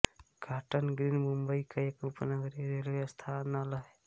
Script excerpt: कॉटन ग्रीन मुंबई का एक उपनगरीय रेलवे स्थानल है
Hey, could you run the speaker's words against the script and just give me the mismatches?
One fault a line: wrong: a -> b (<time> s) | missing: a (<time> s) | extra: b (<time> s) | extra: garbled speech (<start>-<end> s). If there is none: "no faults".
no faults